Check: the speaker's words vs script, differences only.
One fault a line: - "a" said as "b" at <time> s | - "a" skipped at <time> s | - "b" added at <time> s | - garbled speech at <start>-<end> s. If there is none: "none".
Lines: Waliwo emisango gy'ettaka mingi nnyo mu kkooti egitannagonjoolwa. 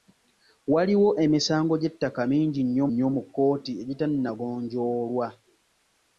- "nnyo" added at 2.9 s